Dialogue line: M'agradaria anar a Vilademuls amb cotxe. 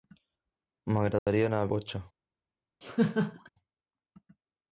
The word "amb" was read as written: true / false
false